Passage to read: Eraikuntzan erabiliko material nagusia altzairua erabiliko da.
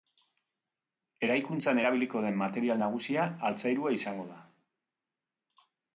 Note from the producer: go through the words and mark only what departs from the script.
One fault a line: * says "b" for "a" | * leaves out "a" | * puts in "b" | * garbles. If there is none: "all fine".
* puts in "den"
* says "izango" for "erabiliko"